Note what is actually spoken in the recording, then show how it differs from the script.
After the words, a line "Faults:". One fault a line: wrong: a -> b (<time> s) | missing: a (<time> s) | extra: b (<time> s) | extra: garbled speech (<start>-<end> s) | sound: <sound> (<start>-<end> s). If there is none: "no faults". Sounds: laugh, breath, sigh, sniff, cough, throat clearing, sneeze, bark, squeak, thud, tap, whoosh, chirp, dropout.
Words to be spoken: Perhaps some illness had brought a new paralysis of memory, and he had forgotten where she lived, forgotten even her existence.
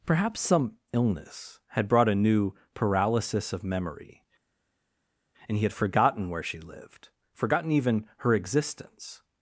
Perhaps some illness had brought a new paralysis of memory, and he had forgotten where she lived, forgotten even her existence.
Faults:
no faults